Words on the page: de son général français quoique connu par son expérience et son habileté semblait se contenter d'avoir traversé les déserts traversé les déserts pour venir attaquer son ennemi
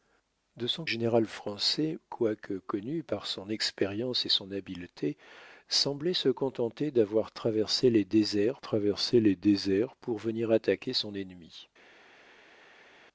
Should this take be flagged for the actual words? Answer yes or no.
no